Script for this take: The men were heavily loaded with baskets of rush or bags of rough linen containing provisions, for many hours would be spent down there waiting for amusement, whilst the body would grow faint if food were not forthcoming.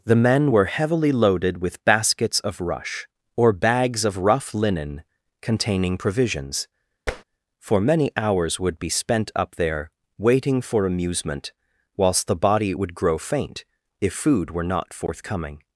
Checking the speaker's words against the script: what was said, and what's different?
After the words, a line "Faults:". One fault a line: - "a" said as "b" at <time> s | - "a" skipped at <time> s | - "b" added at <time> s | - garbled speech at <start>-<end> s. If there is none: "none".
The men were heavily loaded with baskets of rush or bags of rough linen containing provisions, for many hours would be spent up there waiting for amusement, whilst the body would grow faint if food were not forthcoming.
Faults:
- "down" said as "up" at 9.3 s